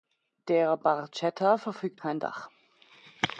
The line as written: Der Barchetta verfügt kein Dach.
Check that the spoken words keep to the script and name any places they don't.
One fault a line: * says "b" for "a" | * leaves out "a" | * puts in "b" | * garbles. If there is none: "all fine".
all fine